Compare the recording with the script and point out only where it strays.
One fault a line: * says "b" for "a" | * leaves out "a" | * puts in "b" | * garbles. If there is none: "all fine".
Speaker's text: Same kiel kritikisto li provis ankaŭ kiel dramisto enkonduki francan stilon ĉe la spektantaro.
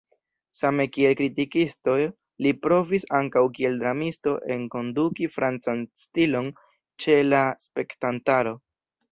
all fine